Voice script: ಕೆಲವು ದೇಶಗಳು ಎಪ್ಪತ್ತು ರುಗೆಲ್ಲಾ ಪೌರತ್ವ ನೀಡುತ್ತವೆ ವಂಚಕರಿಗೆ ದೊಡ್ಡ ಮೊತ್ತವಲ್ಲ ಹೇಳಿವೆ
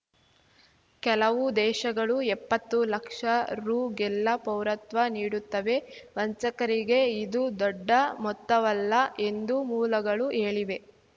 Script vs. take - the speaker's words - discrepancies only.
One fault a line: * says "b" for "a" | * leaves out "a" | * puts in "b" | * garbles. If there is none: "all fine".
* puts in "ಲಕ್ಷ"
* puts in "ಇದು"
* puts in "ಎಂದು ಮೂಲಗಳು"